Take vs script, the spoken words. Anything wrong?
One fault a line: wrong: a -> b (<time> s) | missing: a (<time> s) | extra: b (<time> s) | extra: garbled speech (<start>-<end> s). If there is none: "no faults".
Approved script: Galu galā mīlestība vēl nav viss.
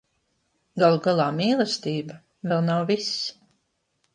no faults